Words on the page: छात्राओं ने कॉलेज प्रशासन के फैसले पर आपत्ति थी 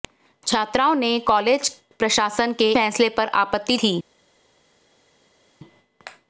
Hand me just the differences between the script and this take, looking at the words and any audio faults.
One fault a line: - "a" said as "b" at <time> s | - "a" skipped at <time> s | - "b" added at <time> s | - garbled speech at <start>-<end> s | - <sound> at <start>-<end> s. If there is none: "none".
none